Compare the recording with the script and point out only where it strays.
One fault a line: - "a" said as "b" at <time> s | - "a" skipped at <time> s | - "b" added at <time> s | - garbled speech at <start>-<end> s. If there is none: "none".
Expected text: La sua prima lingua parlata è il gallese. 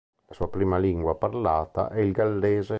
none